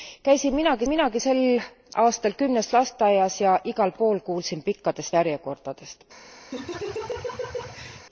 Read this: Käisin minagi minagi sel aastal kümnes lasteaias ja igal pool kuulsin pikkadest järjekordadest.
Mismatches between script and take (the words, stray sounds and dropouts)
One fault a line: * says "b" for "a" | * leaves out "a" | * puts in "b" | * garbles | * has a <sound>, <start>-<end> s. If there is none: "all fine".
* has a laugh, 6.5-8.1 s